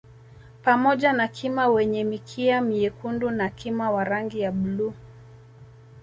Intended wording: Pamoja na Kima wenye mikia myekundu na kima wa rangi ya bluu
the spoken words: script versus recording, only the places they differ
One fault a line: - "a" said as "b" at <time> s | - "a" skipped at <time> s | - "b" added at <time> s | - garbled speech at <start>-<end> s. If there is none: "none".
none